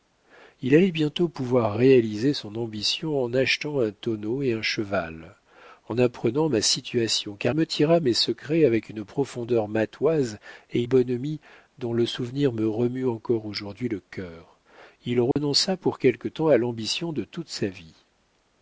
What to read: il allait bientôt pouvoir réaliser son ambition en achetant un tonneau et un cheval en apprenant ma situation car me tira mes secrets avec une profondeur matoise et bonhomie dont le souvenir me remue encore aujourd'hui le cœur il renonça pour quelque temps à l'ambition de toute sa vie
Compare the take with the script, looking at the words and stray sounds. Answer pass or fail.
fail